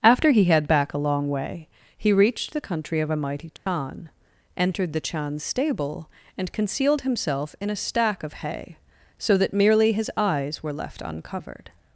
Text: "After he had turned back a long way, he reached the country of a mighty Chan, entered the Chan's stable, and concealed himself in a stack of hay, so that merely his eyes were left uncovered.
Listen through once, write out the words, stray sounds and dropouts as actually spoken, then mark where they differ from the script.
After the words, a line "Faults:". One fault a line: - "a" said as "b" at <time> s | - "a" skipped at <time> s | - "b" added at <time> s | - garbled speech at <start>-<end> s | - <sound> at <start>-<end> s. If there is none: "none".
"After he had back a long way, he reached the country of a mighty Chan, entered the Chan's stable, and concealed himself in a stack of hay, so that merely his eyes were left uncovered.
Faults:
- "turned" skipped at 0.7 s
- dropout at 3.6-3.7 s